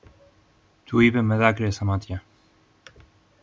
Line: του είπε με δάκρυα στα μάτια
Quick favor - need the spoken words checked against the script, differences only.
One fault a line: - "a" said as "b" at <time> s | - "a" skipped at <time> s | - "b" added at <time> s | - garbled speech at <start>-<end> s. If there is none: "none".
none